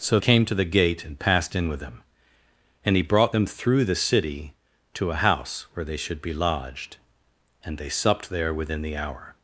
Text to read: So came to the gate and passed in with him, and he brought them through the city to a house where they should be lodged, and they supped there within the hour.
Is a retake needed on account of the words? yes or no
no